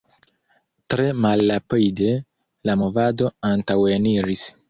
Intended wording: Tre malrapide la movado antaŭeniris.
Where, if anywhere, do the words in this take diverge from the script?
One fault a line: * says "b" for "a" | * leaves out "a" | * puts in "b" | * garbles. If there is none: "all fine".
all fine